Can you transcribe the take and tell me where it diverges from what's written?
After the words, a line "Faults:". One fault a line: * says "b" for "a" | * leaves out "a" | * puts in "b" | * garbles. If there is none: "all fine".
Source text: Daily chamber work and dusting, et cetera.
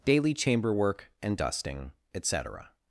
Daily chamber work and dusting, et cetera.
Faults:
all fine